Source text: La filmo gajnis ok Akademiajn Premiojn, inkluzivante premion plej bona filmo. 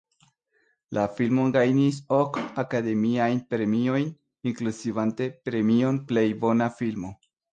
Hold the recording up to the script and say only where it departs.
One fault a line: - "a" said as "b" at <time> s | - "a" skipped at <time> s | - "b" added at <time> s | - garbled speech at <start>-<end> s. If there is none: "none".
none